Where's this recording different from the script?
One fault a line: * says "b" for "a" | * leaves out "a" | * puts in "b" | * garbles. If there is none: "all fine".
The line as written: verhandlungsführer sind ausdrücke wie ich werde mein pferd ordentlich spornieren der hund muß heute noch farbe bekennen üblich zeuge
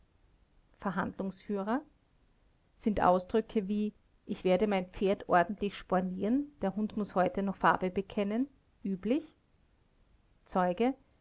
all fine